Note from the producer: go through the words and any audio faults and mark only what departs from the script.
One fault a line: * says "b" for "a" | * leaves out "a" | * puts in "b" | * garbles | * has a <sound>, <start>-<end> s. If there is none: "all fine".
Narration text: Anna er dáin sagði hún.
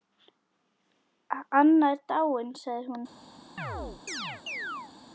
* has a chirp, 3.6-4.9 s